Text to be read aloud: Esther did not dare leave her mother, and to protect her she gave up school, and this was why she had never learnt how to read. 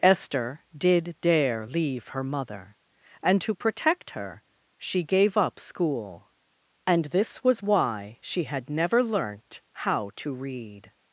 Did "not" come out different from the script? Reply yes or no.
yes